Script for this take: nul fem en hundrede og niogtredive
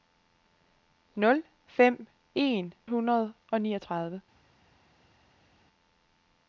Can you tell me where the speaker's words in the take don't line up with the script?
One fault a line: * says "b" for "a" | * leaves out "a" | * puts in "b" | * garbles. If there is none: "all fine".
all fine